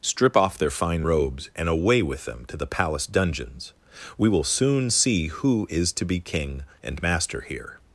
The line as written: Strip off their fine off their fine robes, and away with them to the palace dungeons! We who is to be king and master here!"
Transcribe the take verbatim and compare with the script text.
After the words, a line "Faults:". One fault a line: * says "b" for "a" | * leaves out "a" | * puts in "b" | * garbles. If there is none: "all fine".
Strip off their fine robes, and away with them to the palace dungeons! We will soon see who is to be king and master here!"
Faults:
* leaves out "off their fine"
* puts in "will soon see"